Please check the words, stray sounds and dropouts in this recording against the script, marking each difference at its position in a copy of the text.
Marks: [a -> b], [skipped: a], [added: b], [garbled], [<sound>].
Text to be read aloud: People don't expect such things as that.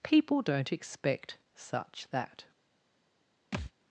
People don't expect such [skipped: things as] that. [thud]